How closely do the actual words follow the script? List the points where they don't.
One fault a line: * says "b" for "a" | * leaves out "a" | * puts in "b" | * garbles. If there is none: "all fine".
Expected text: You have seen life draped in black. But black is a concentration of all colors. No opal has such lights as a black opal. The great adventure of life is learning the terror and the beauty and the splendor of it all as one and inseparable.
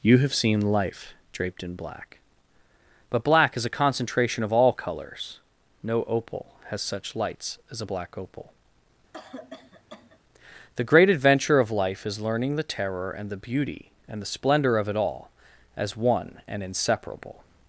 all fine